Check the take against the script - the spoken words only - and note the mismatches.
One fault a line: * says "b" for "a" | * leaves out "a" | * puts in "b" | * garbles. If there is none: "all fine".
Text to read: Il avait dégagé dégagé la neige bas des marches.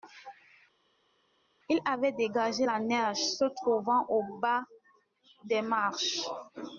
* leaves out "dégagé"
* puts in "se trouvant au"